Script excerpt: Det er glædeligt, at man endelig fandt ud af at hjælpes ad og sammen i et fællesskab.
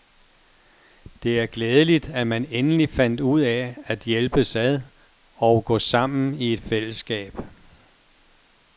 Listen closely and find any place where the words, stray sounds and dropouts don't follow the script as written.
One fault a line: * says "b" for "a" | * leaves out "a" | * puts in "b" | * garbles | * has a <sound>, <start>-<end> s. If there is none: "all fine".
* puts in "gå"